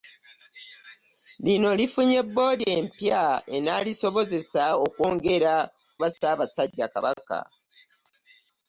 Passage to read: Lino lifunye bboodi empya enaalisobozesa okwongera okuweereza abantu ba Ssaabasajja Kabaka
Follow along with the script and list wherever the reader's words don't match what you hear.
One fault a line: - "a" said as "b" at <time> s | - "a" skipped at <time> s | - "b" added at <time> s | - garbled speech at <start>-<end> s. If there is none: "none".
- "okuweereza abantu" skipped at 5.5 s